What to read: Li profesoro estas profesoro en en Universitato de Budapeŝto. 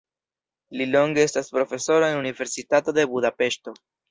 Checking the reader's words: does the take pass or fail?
fail